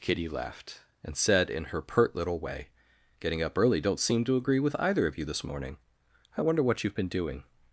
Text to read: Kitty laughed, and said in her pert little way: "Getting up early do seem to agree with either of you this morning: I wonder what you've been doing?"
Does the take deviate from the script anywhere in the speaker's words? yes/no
yes